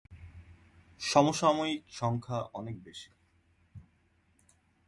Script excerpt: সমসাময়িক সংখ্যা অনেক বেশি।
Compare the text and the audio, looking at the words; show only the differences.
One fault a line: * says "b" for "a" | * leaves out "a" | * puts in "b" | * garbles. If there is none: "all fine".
all fine